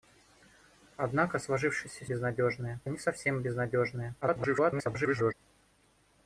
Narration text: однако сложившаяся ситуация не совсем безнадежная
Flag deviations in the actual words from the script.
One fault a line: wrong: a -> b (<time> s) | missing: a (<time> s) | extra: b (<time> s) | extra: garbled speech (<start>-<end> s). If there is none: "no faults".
wrong: ситуация -> безнадежная (2.0 s)
extra: garbled speech (4.2-5.3 s)